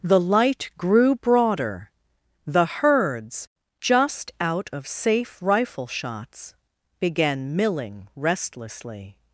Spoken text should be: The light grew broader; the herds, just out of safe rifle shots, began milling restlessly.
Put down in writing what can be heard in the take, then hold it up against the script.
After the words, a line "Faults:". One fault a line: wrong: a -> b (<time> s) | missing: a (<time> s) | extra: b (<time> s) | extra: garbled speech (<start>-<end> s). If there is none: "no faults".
The light grew broader; the herds, just out of safe rifle shots, began milling restlessly.
Faults:
no faults